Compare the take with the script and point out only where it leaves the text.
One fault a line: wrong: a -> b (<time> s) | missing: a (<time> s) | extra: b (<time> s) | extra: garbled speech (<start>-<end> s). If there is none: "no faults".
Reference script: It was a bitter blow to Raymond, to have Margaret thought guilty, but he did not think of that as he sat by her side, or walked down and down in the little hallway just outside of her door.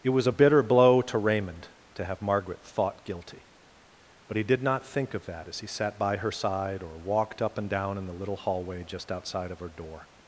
wrong: down -> up (7.4 s)